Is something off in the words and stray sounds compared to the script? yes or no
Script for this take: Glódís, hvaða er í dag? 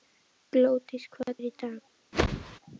yes